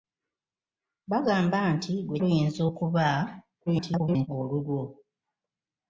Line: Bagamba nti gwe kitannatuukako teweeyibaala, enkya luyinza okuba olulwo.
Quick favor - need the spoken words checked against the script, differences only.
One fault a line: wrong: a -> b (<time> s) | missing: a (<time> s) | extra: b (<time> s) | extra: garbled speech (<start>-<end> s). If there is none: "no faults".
missing: kitannatuukako teweeyibaala enkya (2.2 s)
extra: garbled speech (3.7-4.3 s)